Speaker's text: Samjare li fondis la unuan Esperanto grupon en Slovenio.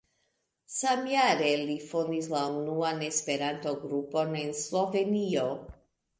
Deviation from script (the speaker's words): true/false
false